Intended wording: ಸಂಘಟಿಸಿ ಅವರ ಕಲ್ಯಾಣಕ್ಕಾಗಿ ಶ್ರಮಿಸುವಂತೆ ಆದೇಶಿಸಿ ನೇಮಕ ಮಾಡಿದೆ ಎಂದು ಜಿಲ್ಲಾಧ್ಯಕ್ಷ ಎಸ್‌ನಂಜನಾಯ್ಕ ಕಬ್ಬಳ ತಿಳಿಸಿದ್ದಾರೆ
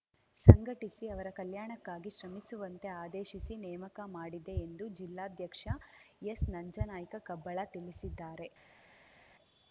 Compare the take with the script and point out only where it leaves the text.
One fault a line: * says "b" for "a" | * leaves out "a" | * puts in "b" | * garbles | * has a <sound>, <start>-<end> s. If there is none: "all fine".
all fine